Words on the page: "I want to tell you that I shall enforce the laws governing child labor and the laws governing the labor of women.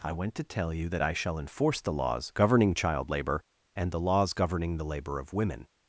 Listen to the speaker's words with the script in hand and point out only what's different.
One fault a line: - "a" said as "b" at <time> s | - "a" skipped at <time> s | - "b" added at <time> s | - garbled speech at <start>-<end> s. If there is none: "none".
- "want" said as "went" at 0.1 s